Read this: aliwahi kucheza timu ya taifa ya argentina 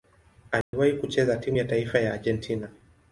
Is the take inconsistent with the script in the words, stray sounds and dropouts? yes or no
yes